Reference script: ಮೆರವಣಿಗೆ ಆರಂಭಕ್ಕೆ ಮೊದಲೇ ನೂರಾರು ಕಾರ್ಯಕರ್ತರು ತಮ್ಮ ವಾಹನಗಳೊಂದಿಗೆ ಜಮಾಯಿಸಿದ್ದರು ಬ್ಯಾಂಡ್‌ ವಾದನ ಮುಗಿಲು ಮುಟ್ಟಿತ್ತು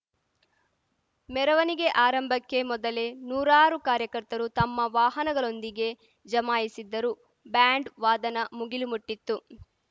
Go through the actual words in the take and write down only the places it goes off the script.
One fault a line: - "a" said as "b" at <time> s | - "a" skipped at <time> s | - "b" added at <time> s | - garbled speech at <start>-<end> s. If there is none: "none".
none